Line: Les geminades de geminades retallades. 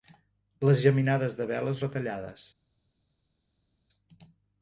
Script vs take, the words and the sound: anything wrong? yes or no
yes